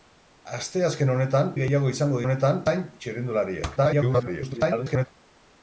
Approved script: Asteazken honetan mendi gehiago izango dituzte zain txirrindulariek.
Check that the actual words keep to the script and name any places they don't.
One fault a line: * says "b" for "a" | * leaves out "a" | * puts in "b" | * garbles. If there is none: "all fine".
* leaves out "mendi"
* says "honetan" for "dituzte"
* garbles